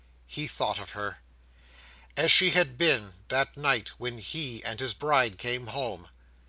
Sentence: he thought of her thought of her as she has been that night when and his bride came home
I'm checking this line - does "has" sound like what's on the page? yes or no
no